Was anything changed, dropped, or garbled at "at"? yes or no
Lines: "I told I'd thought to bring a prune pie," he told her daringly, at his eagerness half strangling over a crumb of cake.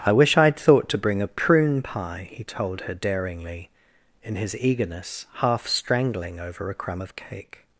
yes